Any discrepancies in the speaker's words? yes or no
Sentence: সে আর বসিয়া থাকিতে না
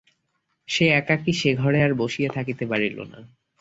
yes